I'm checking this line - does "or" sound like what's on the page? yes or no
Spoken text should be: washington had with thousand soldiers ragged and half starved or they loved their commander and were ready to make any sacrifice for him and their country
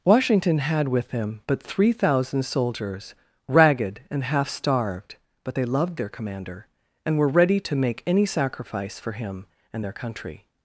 no